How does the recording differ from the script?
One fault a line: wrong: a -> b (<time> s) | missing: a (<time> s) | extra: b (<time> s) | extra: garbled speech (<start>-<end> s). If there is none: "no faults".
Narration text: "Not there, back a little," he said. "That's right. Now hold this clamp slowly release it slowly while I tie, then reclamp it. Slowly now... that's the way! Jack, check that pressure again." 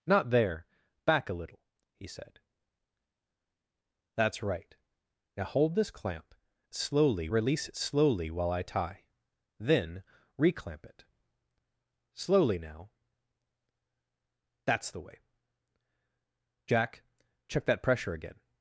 no faults